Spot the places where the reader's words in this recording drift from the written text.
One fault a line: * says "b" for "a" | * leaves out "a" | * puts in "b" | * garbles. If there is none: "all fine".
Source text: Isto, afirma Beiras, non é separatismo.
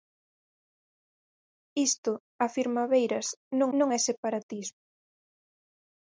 * puts in "non"